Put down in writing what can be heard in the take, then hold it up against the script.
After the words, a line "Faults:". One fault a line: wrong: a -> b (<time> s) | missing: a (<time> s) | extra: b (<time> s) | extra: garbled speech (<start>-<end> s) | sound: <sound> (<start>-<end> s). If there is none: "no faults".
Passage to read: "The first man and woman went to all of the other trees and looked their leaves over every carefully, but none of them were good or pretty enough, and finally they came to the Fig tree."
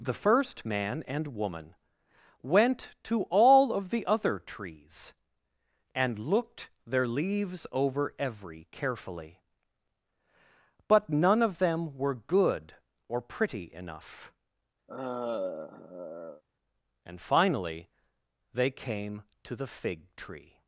"The first man and woman went to all of the other trees and looked their leaves over every carefully, but none of them were good or pretty enough, and finally they came to the Fig tree."
Faults:
sound: sigh (14.9-16.4 s)